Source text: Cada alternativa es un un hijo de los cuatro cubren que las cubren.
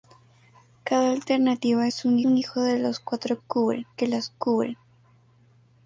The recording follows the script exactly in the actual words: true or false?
true